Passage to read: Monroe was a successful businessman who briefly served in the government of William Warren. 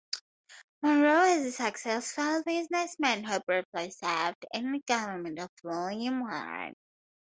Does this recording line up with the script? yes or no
yes